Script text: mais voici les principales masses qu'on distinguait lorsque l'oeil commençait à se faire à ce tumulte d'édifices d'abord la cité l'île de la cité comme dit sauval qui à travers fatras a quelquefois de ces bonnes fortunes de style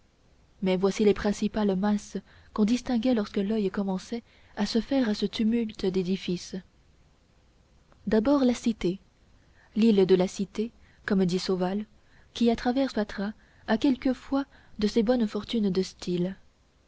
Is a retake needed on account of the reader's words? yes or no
no